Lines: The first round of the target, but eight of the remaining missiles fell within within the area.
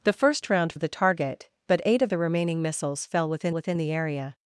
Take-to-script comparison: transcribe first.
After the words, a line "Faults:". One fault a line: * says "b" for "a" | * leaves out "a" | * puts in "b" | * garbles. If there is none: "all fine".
The first round of the target, but eight of the remaining missiles fell within within the area.
Faults:
all fine